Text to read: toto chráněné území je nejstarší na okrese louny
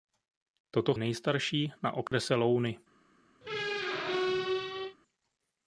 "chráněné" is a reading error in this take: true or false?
true